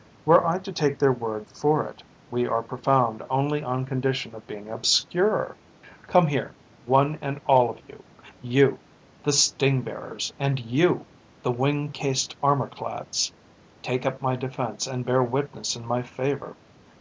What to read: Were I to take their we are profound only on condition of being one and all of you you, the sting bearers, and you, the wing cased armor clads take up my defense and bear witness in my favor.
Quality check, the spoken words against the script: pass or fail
fail